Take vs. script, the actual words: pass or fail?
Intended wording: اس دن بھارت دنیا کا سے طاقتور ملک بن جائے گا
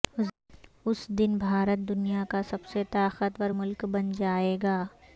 fail